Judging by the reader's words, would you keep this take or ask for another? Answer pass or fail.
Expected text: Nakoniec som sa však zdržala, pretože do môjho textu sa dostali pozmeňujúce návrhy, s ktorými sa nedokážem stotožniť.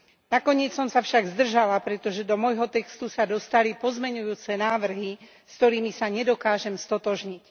pass